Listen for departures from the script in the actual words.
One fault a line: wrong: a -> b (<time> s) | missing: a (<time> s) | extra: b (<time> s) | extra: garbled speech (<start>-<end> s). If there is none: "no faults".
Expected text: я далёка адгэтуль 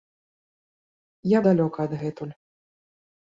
no faults